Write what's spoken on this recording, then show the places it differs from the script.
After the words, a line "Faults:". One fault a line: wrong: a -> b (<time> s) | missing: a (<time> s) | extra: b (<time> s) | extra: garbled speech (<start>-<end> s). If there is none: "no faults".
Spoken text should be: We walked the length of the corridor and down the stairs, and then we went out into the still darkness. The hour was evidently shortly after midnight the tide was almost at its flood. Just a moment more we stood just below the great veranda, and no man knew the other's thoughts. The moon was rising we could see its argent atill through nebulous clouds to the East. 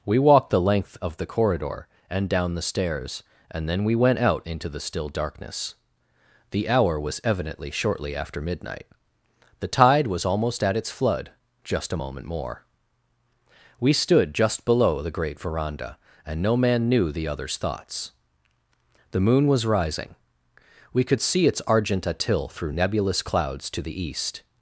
We walked the length of the corridor and down the stairs, and then we went out into the still darkness. The hour was evidently shortly after midnight the tide was almost at its flood. Just a moment more we stood just below the great veranda, and no man knew the other's thoughts. The moon was rising we could see its argent atill through nebulous clouds to the East.
Faults:
no faults